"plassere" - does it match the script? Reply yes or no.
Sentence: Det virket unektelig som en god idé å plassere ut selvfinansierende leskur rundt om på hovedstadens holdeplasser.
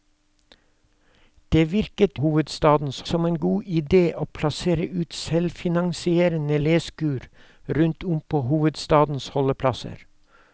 yes